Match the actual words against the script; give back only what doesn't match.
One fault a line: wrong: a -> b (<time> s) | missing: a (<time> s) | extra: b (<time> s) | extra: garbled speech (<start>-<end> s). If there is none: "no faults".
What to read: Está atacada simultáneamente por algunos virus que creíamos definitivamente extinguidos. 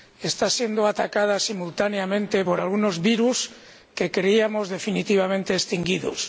extra: siendo (0.6 s)